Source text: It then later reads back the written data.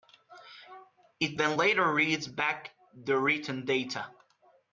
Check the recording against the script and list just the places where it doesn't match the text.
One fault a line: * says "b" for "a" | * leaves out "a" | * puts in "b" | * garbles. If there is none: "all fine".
all fine